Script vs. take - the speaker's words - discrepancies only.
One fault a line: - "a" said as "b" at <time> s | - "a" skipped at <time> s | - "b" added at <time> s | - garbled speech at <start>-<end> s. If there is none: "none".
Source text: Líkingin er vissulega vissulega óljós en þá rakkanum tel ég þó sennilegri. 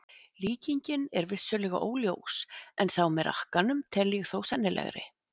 - "vissulega" skipped at 1.8 s
- "með" added at 3.2 s